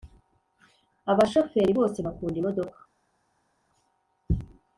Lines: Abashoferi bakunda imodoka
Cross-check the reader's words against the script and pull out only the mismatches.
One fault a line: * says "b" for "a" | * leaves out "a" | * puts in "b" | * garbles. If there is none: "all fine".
* puts in "bose"